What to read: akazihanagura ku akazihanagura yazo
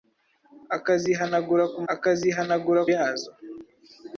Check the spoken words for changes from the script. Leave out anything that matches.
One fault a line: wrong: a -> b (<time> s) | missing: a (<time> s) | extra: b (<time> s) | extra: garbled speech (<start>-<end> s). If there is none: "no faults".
no faults